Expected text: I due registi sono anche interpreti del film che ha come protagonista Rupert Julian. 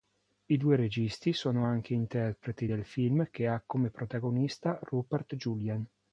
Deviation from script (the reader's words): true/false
false